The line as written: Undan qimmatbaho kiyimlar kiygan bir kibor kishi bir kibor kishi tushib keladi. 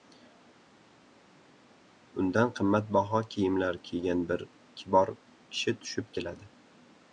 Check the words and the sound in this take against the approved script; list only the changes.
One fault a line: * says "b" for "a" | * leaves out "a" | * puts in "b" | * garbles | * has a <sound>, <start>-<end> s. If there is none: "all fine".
* leaves out "bir kibor kishi"